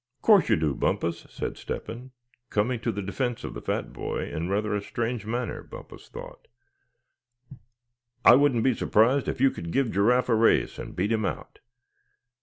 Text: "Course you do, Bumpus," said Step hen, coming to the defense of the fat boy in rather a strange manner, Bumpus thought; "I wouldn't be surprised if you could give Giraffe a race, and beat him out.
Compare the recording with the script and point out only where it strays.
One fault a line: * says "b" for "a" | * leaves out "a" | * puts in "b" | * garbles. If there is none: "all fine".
all fine